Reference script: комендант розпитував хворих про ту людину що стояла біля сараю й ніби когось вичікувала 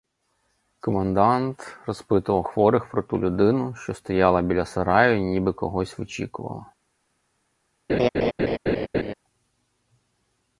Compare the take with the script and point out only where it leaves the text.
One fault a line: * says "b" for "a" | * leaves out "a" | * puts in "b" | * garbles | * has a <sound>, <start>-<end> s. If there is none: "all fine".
* has a laugh, 7.9-9.1 s